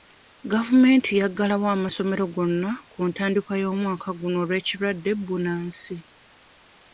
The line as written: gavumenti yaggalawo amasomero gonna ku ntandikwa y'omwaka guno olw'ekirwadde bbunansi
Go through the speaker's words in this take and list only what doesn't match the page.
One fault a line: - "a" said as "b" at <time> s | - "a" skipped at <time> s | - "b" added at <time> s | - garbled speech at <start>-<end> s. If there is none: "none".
none